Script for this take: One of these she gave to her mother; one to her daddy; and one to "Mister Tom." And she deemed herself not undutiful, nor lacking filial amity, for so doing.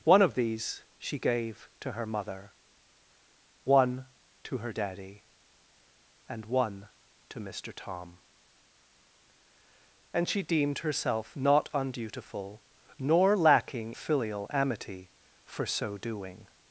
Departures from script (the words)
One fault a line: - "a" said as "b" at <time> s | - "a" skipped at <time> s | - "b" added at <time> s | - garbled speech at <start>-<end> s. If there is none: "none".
none